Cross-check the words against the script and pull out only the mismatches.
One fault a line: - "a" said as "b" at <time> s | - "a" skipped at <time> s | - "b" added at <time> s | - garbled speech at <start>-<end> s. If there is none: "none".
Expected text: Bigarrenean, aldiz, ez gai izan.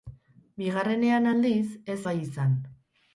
none